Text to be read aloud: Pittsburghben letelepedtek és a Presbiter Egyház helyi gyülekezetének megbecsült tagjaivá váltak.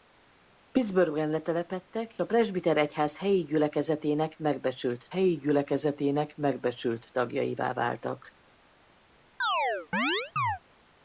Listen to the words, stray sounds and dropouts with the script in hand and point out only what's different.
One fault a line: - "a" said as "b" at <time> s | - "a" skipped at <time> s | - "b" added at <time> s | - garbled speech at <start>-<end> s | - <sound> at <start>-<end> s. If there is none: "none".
- "és" skipped at 2.2 s
- "helyi gyülekezetének megbecsült" added at 5.1 s
- chirp at 9.4-10.6 s